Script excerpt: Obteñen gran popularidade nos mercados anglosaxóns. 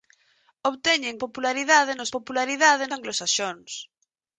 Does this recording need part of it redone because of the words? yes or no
yes